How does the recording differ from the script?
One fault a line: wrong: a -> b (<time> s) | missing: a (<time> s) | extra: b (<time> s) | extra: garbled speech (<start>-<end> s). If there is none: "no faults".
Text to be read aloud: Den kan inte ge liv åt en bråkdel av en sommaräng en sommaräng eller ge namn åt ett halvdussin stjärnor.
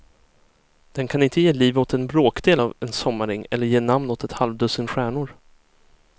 missing: en sommaräng (3.4 s)